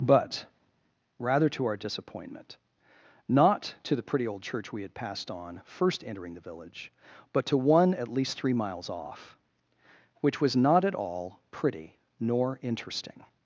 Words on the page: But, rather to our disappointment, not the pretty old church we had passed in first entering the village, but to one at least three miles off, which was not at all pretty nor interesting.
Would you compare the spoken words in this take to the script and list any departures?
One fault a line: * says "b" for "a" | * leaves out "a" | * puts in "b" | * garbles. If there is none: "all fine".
* puts in "to"
* says "on" for "in"